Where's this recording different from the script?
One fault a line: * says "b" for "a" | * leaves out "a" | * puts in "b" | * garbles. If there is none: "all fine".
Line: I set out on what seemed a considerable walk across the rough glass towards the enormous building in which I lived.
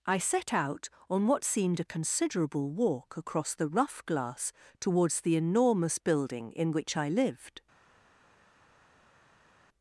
all fine